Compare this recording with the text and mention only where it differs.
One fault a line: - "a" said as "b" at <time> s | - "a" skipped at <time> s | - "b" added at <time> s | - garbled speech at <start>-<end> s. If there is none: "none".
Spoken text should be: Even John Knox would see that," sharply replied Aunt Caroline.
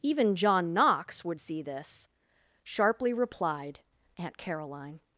- "that" said as "this" at 1.6 s